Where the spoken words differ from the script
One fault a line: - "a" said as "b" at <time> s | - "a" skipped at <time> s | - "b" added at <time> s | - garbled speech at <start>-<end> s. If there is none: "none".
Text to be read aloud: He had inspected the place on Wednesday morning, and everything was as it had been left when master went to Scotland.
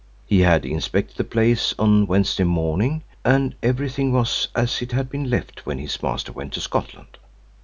- "his" added at 5.8 s